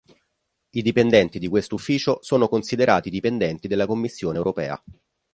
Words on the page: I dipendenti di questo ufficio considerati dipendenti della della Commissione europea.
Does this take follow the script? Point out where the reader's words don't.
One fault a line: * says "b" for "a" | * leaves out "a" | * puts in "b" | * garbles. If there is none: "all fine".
* puts in "sono"
* leaves out "della"